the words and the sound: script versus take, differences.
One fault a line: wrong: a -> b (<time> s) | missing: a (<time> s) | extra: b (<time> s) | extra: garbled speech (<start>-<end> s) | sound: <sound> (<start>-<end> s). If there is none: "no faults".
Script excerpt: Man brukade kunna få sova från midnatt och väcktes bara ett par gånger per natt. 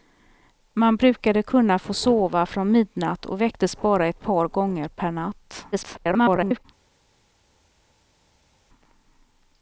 extra: garbled speech (5.7-6.7 s)